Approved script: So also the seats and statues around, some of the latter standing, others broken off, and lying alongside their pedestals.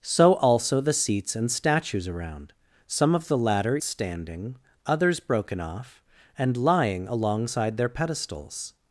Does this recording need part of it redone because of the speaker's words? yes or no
no